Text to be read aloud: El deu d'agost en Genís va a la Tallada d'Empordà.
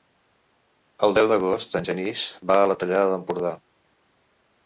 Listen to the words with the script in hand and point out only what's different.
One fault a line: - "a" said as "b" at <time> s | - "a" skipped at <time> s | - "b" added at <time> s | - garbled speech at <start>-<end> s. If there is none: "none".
none